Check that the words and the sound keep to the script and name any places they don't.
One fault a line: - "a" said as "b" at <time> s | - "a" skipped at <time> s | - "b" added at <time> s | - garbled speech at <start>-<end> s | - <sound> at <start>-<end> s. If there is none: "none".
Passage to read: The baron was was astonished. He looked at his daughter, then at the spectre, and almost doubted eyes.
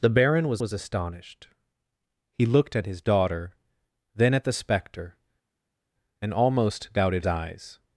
none